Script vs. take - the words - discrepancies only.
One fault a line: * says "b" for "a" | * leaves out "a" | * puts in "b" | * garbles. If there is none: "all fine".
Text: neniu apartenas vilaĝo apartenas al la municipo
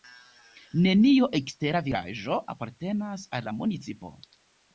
* says "ekstera" for "apartenas"